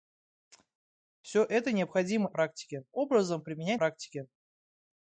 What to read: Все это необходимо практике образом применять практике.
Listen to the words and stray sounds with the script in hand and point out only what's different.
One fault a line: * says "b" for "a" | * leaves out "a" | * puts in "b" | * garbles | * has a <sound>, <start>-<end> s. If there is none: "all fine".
all fine